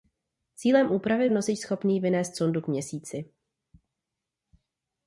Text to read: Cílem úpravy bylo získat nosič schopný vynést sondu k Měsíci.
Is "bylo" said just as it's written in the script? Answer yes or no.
no